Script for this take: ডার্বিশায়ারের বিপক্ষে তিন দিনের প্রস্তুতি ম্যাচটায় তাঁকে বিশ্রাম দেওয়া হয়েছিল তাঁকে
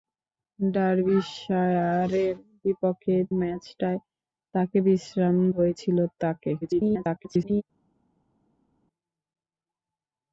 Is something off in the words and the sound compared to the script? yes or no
yes